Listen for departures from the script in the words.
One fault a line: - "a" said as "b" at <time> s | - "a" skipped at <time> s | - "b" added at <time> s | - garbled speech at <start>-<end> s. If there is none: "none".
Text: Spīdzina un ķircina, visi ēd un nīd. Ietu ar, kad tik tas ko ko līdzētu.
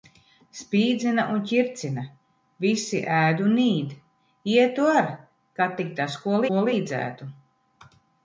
none